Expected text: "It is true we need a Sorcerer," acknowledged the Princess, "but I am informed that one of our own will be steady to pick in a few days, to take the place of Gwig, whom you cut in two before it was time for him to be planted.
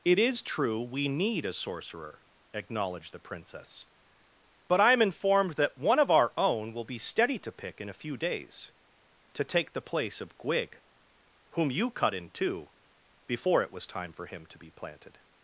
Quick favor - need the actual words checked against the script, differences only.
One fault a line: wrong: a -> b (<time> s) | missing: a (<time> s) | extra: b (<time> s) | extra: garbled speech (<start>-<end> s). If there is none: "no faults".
no faults